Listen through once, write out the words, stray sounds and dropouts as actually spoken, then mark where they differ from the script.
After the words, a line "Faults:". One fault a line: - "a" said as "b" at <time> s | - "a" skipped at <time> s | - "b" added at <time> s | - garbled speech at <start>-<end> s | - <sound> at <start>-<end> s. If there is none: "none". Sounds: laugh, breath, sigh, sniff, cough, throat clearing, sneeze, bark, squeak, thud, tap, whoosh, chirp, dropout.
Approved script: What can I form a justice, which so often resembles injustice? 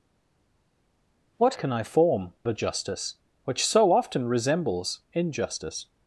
What can I form a justice, which so often resembles injustice?
Faults:
none